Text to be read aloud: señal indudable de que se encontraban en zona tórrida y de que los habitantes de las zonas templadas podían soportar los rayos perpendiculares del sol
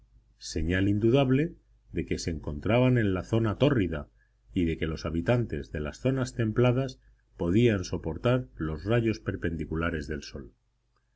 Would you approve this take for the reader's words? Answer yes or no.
no